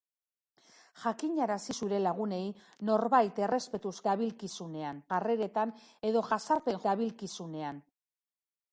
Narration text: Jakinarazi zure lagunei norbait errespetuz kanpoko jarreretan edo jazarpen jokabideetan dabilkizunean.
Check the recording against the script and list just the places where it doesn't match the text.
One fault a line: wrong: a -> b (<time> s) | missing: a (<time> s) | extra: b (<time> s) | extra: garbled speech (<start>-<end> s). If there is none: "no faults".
wrong: kanpoko -> dabilkizunean (4.1 s)
missing: jokabideetan (6.8 s)